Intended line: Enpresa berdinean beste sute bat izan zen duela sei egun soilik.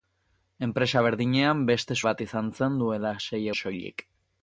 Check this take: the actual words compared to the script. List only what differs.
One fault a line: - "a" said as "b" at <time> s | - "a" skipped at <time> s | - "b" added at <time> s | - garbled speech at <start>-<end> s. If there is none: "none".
- "sute" skipped at 2.0 s
- "egun" skipped at 3.4 s